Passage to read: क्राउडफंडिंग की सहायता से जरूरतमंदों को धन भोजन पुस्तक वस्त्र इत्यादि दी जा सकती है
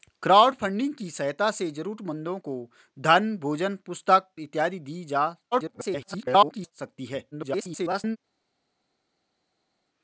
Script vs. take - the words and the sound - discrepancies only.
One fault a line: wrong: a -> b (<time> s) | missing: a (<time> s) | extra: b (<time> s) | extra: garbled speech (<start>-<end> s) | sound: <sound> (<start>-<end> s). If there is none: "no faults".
missing: वस्त्र (4.3 s)
extra: garbled speech (5.5-6.7 s)
extra: garbled speech (7.3-8.2 s)